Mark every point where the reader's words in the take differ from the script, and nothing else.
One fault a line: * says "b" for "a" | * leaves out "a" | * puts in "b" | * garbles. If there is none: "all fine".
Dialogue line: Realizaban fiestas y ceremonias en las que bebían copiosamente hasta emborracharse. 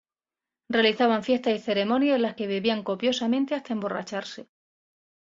all fine